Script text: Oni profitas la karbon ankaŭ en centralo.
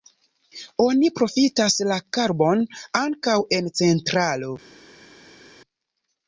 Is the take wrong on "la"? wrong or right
right